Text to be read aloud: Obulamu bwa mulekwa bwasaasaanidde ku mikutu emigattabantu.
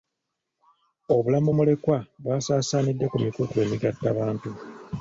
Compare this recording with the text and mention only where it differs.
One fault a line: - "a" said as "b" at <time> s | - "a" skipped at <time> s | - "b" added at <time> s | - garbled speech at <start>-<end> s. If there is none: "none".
- "bwa" skipped at 1.5 s